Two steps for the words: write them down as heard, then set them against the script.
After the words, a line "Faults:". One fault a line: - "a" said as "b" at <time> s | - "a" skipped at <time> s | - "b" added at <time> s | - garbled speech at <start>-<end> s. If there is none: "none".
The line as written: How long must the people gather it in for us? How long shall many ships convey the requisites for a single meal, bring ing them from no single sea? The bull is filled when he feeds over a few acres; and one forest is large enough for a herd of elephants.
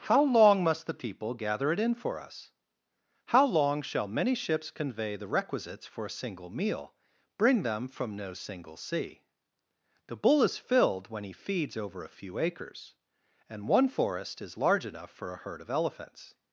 How long must the people gather it in for us? How long shall many ships convey the requisites for a single meal, bring them from no single sea? The bull is filled when he feeds over a few acres; and one forest is large enough for a herd of elephants.
Faults:
- "ing" skipped at 7.6 s